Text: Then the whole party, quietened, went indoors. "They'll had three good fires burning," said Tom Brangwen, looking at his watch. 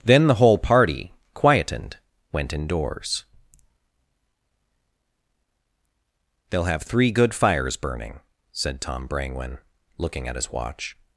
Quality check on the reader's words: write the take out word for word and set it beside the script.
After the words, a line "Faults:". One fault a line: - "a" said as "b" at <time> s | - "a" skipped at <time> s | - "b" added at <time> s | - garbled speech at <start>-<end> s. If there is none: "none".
Then the whole party, quietened, went indoors. "They'll have three good fires burning," said Tom Brangwen, looking at his watch.
Faults:
- "had" said as "have" at 6.7 s